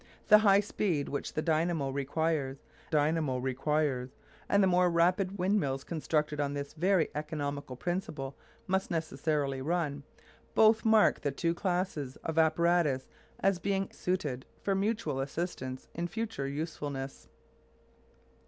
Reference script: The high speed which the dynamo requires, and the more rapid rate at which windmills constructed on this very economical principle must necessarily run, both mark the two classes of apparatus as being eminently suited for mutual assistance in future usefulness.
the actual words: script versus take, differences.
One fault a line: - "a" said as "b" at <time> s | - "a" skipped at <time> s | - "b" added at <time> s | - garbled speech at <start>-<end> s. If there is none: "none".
- "dynamo requires" added at 2.9 s
- "rate at which" skipped at 5.4 s
- "eminently" skipped at 13.9 s